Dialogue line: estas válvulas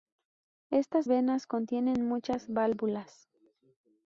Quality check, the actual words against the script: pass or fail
fail